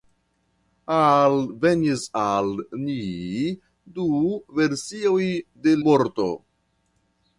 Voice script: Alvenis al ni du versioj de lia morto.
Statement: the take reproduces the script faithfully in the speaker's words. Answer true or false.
false